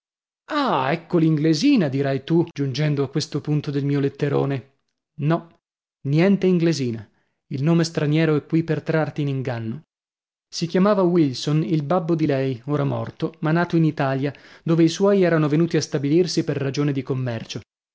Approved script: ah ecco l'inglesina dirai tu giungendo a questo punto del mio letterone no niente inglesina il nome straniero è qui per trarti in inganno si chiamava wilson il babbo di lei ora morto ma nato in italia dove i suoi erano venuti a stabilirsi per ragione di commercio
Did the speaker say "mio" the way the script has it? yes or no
yes